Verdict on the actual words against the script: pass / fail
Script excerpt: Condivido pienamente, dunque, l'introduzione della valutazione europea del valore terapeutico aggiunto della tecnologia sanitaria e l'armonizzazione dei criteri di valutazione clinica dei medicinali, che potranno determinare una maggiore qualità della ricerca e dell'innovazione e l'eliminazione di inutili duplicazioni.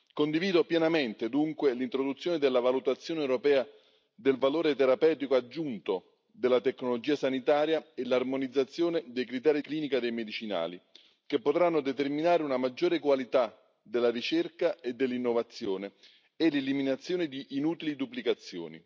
fail